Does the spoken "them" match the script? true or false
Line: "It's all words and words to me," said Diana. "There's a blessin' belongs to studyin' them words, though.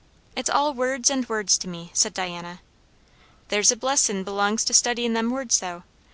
true